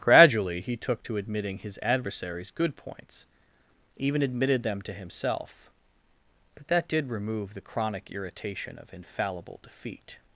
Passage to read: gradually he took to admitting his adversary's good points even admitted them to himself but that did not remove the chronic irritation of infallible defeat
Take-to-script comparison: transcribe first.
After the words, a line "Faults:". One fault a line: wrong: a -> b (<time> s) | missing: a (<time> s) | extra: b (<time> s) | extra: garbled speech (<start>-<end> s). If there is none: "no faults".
gradually he took to admitting his adversary's good points even admitted them to himself but that did remove the chronic irritation of infallible defeat
Faults:
missing: not (7.1 s)